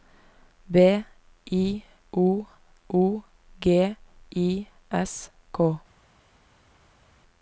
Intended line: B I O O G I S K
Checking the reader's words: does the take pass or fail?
pass